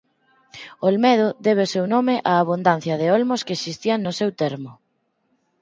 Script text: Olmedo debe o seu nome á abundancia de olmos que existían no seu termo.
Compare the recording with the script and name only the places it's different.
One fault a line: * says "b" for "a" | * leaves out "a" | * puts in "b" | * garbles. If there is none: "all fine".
all fine